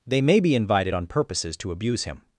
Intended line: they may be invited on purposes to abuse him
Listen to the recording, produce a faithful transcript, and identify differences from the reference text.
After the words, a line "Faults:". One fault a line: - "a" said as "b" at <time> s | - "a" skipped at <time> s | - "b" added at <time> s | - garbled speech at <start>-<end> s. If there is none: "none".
they may be invited on purposes to abuse him
Faults:
none